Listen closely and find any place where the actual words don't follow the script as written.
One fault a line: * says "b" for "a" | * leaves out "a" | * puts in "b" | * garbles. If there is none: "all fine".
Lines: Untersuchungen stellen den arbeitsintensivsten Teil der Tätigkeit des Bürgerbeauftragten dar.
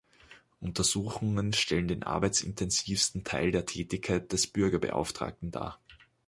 all fine